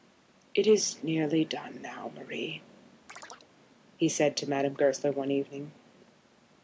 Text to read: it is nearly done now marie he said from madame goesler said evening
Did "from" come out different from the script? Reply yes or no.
yes